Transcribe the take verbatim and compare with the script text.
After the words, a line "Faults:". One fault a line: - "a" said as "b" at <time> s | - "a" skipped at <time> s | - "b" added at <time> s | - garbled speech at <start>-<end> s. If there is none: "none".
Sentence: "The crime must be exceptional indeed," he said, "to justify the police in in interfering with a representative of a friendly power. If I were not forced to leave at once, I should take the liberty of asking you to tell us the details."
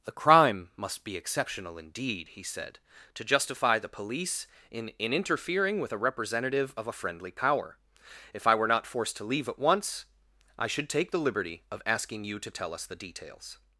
"The crime must be exceptional indeed," he said, "to justify the police in in interfering with a representative of a friendly power. If I were not forced to leave at once, I should take the liberty of asking you to tell us the details."
Faults:
none